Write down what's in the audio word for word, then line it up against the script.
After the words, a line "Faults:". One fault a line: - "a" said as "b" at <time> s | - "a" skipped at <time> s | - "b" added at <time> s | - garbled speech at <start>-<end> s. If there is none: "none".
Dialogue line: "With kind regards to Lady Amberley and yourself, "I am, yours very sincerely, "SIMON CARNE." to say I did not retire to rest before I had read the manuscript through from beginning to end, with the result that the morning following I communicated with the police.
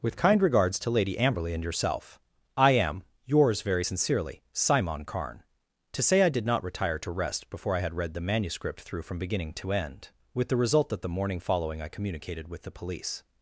"With kind regards to Lady Amberley and yourself, "I am, yours very sincerely, "SIMON CARNE." to say I did not retire to rest before I had read the manuscript through from beginning to end, with the result that the morning following I communicated with the police.
Faults:
none